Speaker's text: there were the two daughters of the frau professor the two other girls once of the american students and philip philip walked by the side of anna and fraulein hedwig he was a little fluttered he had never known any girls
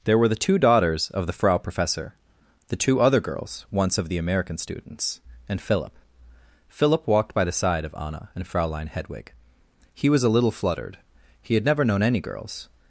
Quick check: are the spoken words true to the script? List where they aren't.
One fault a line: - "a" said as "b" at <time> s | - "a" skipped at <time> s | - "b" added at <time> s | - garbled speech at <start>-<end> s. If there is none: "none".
none